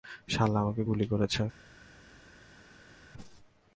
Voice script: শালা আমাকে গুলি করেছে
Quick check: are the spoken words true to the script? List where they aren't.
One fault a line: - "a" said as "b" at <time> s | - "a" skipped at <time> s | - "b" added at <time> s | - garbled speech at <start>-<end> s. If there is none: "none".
none